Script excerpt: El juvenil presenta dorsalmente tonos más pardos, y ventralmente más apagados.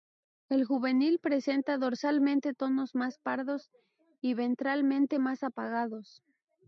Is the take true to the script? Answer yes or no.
yes